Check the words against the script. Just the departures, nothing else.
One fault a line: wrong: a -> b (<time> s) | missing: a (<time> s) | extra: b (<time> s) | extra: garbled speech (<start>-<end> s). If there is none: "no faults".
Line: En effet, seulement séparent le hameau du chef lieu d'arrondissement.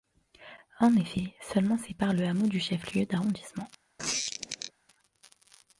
no faults